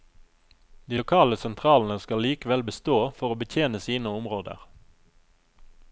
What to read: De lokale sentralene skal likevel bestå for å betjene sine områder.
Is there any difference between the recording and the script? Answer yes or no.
no